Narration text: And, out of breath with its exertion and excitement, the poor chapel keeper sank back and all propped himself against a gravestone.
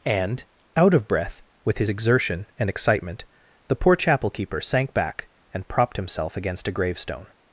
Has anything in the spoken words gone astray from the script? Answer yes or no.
yes